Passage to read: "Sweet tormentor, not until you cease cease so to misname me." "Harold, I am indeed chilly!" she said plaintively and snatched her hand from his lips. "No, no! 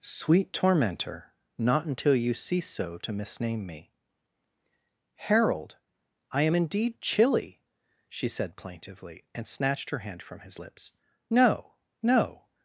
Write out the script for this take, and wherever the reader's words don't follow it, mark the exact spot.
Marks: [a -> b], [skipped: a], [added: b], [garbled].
"Sweet tormentor, not until you cease [skipped: cease] so to misname me." "Harold, I am indeed chilly!" she said plaintively and snatched her hand from his lips. "No, no!